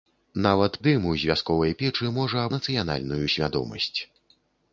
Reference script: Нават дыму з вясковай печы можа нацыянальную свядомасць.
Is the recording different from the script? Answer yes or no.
no